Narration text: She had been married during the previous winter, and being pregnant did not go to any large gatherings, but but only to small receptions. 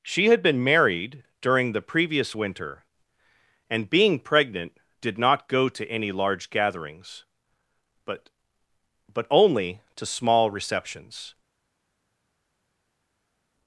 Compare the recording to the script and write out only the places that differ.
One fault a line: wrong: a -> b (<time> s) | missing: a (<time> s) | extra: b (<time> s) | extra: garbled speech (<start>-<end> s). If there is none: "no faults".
no faults